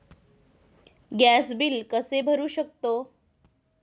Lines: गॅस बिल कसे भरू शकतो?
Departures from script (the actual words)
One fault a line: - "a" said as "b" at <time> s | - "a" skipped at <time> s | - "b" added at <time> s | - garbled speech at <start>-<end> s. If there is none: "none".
none